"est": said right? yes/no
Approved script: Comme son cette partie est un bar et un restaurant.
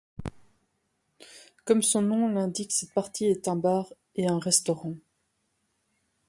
yes